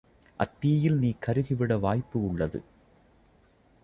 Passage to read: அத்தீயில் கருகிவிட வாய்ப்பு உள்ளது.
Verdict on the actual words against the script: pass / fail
fail